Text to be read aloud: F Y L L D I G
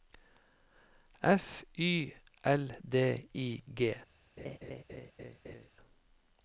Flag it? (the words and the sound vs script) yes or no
yes